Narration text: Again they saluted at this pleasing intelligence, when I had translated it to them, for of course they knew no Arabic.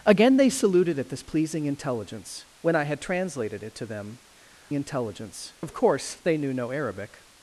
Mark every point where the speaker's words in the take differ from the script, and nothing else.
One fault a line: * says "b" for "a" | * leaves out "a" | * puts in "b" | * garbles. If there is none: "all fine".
* says "intelligence" for "for"